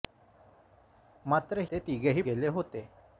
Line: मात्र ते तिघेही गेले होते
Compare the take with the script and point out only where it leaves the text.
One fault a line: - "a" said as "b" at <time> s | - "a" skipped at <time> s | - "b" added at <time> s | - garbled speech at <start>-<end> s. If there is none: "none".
none